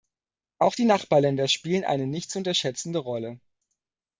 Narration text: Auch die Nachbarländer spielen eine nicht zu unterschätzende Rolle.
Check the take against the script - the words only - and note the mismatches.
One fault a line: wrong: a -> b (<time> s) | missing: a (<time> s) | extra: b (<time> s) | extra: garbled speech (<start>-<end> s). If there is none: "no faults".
no faults